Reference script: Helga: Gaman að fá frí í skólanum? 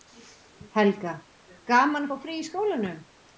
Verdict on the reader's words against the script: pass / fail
pass